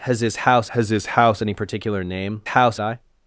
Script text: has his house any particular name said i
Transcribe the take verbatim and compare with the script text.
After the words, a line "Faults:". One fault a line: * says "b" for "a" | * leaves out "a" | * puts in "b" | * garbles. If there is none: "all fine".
has his house has his house any particular name house i
Faults:
* puts in "has his house"
* says "house" for "said"